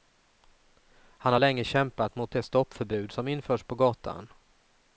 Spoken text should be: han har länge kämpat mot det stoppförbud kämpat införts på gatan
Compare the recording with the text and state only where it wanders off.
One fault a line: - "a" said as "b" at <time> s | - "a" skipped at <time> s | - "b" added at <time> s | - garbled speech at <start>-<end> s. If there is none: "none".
- "kämpat" said as "som" at 3.1 s